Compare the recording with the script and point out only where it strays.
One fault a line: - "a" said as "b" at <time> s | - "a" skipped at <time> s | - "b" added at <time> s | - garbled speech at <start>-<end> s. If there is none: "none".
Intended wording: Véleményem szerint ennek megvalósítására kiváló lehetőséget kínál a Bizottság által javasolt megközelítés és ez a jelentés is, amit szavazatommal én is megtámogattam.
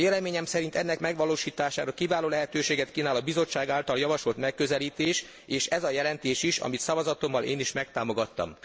none